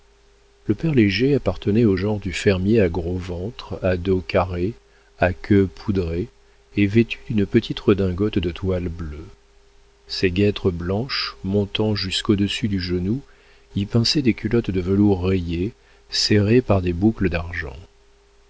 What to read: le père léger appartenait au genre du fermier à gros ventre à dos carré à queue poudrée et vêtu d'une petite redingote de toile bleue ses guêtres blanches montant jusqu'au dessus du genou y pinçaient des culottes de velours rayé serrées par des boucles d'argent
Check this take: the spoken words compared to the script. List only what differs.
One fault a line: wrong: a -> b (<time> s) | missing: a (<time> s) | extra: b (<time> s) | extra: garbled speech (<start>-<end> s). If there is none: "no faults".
no faults